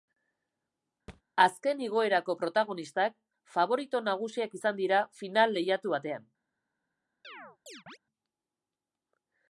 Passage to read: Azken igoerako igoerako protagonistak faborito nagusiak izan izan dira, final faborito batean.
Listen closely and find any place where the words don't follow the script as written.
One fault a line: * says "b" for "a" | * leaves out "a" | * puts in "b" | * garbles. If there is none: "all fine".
* leaves out "igoerako"
* leaves out "izan"
* says "lehiatu" for "faborito"